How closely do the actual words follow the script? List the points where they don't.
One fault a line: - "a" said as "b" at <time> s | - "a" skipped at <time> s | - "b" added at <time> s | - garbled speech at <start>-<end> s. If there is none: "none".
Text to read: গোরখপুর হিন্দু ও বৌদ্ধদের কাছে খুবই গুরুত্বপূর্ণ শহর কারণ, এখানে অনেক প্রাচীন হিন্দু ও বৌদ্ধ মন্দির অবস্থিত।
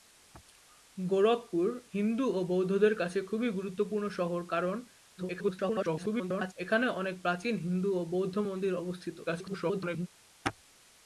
- garbled speech at 5.2-6.5 s
- garbled speech at 9.3-10.1 s